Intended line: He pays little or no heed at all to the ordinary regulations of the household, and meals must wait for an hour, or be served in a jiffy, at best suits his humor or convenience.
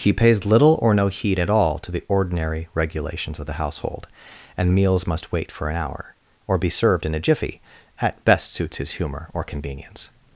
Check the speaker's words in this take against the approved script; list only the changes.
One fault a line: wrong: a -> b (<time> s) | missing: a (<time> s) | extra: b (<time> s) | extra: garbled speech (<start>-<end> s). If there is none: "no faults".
no faults